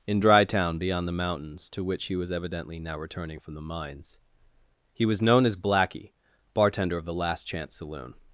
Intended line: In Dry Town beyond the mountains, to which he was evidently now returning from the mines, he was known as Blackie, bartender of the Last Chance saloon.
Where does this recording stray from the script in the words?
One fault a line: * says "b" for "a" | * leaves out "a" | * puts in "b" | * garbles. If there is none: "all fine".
all fine